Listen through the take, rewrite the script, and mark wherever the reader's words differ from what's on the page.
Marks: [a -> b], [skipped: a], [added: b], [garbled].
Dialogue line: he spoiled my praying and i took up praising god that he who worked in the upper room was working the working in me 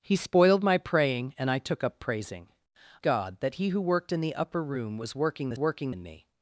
he spoiled my praying and i took up praising god that he who worked in the upper room was working the working in me